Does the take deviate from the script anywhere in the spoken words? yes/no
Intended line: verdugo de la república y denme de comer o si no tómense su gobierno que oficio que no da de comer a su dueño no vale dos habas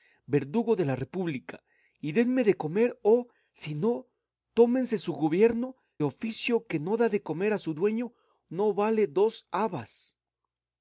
yes